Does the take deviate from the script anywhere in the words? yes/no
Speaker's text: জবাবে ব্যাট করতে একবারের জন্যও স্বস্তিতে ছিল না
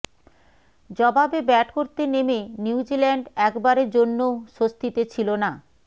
yes